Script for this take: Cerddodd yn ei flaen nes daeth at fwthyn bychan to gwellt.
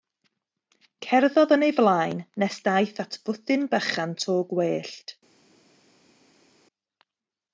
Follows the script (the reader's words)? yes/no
yes